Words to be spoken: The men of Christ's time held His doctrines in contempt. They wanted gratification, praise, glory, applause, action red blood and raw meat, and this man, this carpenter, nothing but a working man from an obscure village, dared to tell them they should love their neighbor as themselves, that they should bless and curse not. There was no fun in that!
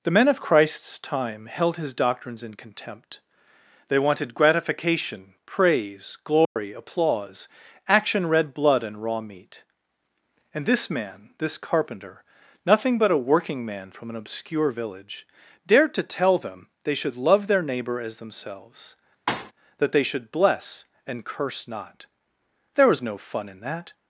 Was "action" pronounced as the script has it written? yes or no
yes